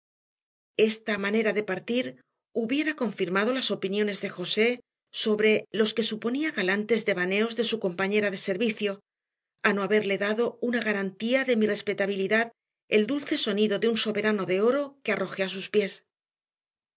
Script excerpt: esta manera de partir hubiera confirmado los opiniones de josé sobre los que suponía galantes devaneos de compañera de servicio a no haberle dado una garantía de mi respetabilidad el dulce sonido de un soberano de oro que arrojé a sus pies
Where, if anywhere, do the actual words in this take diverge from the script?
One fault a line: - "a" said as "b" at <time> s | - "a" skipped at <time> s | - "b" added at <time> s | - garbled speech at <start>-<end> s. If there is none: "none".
- "los" said as "las" at 3.5 s
- "su" added at 7.7 s